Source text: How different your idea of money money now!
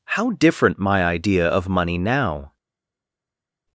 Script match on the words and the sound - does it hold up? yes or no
no